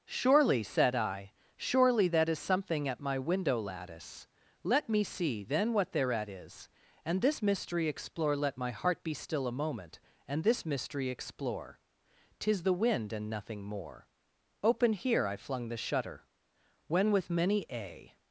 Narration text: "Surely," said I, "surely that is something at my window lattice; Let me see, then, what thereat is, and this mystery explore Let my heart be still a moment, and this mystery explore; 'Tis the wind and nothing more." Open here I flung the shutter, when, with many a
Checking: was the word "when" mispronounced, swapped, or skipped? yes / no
no